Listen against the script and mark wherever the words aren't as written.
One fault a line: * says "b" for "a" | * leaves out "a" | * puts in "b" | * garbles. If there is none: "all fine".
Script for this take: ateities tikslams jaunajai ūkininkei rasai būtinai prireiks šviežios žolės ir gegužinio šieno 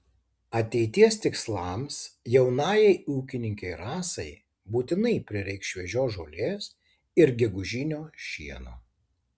all fine